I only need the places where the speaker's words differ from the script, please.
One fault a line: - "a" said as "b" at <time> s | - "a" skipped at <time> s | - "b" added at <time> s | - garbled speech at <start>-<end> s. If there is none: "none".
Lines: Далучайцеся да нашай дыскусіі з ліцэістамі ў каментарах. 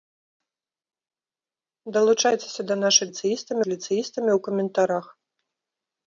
- "дыскусіі" said as "ліцэістамі" at 3.0 s